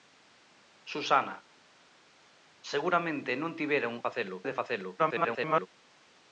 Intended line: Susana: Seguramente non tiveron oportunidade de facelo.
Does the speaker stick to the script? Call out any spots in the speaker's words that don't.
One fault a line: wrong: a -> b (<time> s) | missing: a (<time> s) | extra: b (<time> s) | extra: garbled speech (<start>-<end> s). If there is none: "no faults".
wrong: oportunidade -> facelo (4.1 s)
extra: garbled speech (5.0-5.7 s)